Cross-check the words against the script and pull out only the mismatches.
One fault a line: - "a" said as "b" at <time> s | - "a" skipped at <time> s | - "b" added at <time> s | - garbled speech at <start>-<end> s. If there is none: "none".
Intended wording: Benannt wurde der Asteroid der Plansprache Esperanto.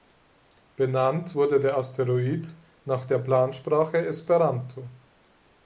- "nach" added at 2.8 s